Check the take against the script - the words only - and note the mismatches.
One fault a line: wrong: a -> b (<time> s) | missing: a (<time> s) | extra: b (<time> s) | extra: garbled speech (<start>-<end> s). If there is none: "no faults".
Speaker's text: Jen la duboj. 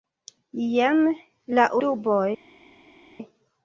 no faults